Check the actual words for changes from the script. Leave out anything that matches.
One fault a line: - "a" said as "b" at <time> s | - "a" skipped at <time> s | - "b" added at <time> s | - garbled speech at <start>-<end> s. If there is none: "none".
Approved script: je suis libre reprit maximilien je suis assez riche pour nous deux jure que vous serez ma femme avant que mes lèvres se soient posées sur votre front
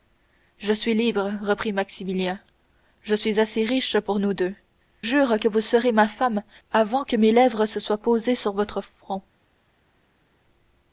none